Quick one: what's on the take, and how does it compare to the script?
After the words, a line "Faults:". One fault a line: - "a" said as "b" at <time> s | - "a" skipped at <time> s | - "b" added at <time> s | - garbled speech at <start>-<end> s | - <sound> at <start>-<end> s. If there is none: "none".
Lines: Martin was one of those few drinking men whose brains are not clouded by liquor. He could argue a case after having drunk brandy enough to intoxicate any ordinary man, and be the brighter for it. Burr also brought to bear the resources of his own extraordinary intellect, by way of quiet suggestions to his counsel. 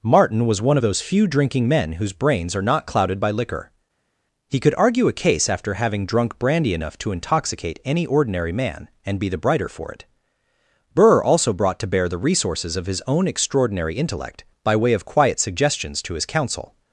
Martin was one of those few drinking men whose brains are not clouded by liquor. He could argue a case after having drunk brandy enough to intoxicate any ordinary man, and be the brighter for it. Burr also brought to bear the resources of his own extraordinary intellect, by way of quiet suggestions to his counsel.
Faults:
none